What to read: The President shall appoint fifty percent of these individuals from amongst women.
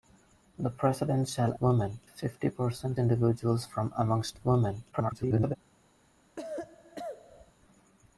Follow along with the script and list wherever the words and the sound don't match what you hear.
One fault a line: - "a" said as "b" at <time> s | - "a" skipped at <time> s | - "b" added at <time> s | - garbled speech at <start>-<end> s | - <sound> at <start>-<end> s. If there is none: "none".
- "appoint" said as "women" at 1.6 s
- "of these" skipped at 3.0 s
- garbled speech at 4.9-5.6 s
- cough at 6.4-7.5 s